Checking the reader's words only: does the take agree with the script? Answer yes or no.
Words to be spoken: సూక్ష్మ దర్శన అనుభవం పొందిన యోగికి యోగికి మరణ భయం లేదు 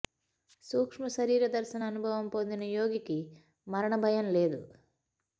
no